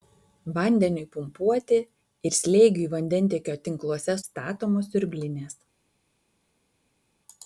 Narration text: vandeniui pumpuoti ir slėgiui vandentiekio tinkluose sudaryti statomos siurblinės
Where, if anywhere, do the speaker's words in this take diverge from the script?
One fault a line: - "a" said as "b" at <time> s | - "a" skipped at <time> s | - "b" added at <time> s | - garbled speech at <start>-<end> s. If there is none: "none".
- "sudaryti" skipped at 4.2 s